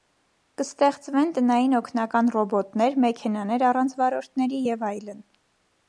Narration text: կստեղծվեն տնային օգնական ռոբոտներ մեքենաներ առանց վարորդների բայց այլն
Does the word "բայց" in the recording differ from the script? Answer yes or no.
yes